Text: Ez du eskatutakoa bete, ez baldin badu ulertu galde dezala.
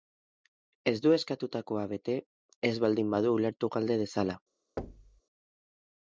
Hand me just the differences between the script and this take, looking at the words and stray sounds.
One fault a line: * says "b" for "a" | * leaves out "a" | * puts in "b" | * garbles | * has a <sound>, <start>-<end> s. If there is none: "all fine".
* has a thud, 4.8-5.2 s